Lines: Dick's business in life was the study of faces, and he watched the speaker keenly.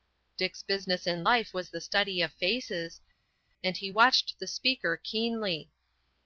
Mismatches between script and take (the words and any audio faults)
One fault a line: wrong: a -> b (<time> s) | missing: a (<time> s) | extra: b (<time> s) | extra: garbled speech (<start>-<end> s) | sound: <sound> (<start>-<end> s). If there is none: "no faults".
no faults